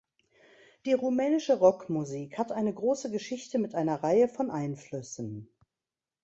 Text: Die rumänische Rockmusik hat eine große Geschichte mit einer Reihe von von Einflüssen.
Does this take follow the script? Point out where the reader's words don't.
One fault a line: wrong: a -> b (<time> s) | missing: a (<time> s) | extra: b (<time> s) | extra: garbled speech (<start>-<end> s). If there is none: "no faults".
missing: von (4.5 s)